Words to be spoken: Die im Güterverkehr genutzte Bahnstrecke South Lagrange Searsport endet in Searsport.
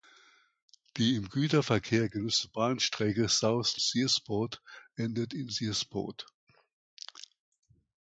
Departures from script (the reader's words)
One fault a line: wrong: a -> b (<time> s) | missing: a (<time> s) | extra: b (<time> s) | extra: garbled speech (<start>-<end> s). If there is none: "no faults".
missing: Lagrange (3.8 s)